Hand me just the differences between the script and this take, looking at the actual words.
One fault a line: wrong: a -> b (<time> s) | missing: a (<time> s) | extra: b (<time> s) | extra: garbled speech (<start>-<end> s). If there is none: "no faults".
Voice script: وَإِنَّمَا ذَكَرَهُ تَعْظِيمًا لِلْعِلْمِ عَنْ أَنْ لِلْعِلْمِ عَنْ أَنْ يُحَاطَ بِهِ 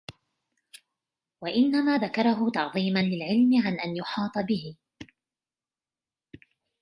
missing: لِلْعِلْمِ عَنْ أَنْ (4.0 s)